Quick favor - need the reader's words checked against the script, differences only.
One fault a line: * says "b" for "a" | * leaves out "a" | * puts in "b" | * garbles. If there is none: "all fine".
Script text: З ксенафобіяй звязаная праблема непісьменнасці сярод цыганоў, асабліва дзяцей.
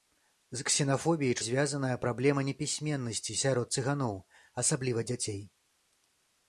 all fine